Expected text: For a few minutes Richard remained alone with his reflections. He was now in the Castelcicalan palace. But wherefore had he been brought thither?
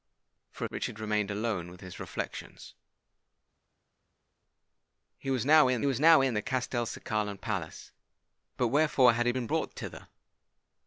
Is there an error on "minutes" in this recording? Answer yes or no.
yes